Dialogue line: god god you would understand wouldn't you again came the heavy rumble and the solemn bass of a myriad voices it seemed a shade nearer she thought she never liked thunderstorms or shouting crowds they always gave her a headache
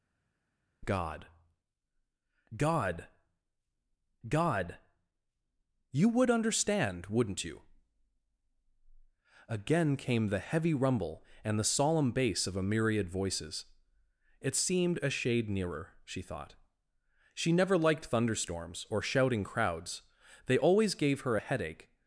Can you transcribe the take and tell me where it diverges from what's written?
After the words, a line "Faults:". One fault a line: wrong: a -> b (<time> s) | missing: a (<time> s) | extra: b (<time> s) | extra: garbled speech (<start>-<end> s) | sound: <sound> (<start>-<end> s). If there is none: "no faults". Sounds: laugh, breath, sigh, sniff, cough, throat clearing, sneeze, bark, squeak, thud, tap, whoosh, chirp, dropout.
god god god you would understand wouldn't you again came the heavy rumble and the solemn bass of a myriad voices it seemed a shade nearer she thought she never liked thunderstorms or shouting crowds they always gave her a headache
Faults:
extra: god (4.3 s)